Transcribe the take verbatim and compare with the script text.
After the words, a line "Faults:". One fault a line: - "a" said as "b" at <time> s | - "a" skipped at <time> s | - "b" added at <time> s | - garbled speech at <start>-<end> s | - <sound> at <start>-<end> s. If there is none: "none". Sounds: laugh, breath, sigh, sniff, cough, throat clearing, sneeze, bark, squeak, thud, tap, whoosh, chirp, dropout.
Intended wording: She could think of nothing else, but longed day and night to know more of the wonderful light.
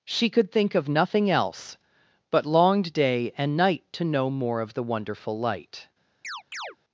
She could think of nothing else, but longed day and night to know more of the wonderful light.
Faults:
- chirp at 6.2-6.8 s